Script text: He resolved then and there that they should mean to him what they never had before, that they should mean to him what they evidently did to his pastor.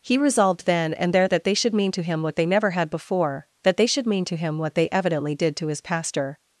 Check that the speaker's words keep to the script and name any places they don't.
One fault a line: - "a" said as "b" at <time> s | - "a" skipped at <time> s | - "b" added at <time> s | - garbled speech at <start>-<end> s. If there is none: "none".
none